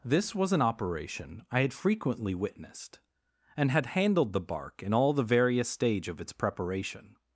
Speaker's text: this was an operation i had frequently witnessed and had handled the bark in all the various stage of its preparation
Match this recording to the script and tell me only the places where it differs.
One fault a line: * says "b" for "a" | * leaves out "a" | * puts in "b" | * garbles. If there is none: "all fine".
all fine